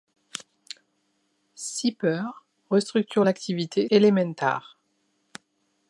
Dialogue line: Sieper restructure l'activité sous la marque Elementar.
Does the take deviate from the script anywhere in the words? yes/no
yes